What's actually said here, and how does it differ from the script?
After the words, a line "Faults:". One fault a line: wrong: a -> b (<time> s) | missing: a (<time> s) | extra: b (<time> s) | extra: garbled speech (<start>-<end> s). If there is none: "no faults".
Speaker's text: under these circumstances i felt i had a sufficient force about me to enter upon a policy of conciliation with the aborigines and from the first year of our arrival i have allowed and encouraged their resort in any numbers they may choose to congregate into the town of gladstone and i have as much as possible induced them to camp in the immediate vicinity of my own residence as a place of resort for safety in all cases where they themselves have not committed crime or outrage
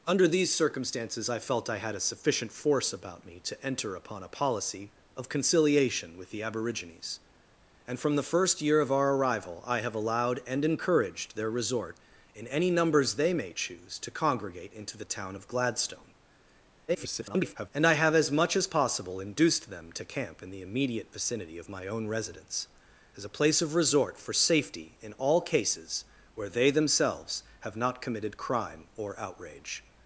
under these circumstances i felt i had a sufficient force about me to enter upon a policy of conciliation with the aborigines and from the first year of our arrival i have allowed and encouraged their resort in any numbers they may choose to congregate into the town of gladstone [garbled] and i have as much as possible induced them to camp in the immediate vicinity of my own residence as a place of resort for safety in all cases where they themselves have not committed crime or outrage
Faults:
extra: garbled speech (16.9-17.7 s)